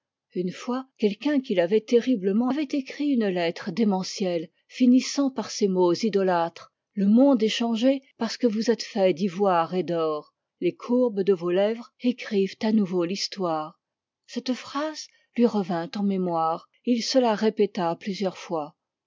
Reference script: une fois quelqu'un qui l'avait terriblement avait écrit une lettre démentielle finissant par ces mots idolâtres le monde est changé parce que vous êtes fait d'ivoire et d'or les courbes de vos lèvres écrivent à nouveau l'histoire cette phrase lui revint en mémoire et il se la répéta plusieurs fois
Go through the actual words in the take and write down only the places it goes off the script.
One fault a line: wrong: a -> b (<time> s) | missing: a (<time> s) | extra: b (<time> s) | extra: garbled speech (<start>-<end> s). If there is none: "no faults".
no faults